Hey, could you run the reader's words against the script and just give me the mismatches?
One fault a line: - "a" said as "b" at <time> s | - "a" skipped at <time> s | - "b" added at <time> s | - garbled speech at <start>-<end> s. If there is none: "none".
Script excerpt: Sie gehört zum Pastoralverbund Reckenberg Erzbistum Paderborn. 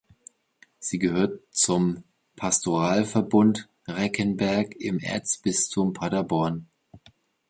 - "im" added at 4.8 s